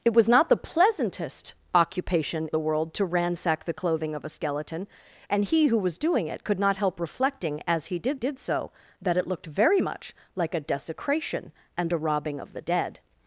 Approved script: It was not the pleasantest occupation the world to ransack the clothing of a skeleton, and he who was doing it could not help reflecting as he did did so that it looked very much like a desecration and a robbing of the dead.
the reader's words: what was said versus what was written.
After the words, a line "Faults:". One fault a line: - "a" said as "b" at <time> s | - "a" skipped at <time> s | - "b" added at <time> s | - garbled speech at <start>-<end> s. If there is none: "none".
It was not the pleasantest occupation the world to ransack the clothing of a skeleton, and he who was doing it could not help reflecting as he did did so that it looked very much like a desecration and a robbing of the dead.
Faults:
none